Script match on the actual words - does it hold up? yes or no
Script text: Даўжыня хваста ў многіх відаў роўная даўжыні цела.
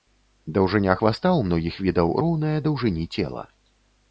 yes